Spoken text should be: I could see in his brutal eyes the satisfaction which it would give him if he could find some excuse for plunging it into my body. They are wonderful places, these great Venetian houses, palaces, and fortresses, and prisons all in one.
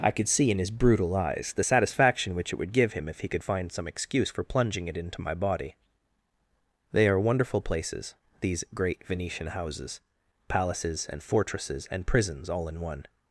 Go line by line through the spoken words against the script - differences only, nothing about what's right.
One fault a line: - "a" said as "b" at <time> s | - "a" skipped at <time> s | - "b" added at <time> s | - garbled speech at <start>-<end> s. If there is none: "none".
none